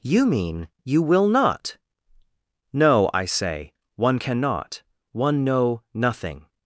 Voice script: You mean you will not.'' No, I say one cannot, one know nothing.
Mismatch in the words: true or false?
false